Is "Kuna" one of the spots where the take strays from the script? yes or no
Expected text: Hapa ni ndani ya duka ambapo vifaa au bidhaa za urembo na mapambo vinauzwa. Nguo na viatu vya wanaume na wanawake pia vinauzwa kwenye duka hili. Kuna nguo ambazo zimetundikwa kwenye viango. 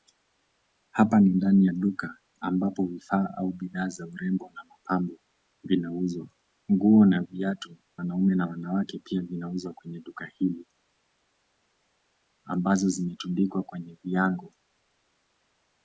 yes